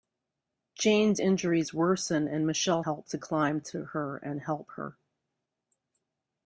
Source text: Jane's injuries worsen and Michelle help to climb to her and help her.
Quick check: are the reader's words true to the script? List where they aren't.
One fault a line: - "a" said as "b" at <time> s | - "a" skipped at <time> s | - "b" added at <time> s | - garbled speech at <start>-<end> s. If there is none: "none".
none